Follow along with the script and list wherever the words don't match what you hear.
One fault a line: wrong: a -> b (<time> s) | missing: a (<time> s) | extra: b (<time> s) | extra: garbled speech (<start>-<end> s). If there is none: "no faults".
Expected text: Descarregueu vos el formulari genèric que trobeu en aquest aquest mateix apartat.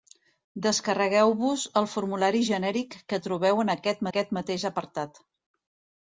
no faults